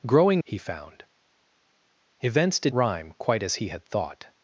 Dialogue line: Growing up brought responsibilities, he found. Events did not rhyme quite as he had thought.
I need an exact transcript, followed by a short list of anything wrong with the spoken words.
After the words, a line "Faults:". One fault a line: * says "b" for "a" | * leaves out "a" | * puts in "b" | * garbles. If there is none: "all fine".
Growing he found. Events did rhyme quite as he had thought.
Faults:
* leaves out "up brought responsibilities"
* leaves out "not"